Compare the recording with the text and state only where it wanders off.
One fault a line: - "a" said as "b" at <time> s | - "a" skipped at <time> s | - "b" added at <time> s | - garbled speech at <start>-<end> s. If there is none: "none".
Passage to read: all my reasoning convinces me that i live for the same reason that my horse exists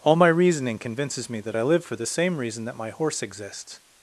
none